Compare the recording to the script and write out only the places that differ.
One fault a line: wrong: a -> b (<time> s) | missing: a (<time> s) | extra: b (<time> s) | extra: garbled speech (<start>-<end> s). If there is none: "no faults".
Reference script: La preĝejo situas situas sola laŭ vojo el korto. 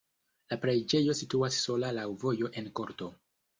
missing: situas (1.6 s)
wrong: el -> en (2.6 s)